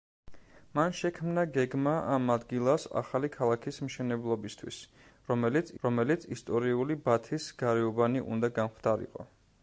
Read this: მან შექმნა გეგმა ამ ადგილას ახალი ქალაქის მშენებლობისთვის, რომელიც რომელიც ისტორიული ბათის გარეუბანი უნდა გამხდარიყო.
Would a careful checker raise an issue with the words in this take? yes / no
no